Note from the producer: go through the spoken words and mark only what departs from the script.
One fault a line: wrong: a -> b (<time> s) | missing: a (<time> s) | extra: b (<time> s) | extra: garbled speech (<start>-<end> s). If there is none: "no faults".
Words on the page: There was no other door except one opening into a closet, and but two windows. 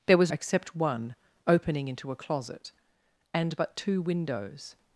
missing: no other door (0.3 s)